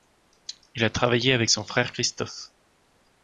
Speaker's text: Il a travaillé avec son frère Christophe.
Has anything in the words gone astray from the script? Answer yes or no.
no